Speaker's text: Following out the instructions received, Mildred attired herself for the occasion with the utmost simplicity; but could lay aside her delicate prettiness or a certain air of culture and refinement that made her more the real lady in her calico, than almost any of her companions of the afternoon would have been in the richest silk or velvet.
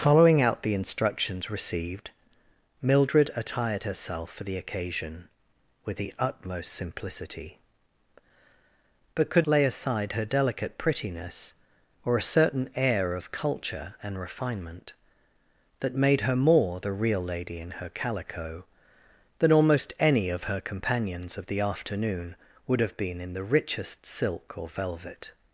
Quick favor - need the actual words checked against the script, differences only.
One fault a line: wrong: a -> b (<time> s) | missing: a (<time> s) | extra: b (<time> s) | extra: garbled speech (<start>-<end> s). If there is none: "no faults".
no faults